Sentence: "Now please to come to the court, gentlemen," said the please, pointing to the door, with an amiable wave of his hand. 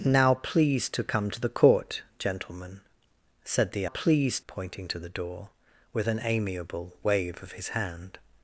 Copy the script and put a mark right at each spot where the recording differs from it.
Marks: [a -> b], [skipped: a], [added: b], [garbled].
"Now please to come to the court, gentlemen," said the please, pointing to the door, with an amiable wave of his hand.